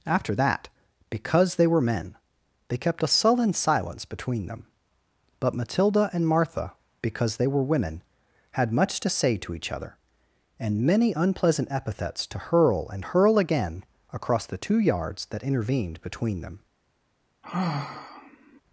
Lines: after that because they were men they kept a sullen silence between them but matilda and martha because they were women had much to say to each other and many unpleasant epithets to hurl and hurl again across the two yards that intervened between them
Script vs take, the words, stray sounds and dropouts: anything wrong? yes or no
yes